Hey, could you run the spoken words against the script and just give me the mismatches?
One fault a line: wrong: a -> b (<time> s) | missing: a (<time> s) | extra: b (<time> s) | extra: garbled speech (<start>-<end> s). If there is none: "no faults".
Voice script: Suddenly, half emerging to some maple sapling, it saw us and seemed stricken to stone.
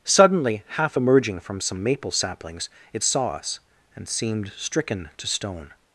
wrong: to -> from (1.4 s)
wrong: sapling -> saplings (2.1 s)